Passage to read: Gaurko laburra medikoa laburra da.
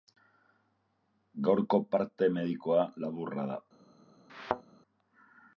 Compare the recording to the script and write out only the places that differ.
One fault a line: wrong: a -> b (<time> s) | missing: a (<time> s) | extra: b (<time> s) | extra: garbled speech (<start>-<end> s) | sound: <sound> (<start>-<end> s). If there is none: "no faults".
wrong: laburra -> parte (2.0 s)
sound: thud (4.3-4.6 s)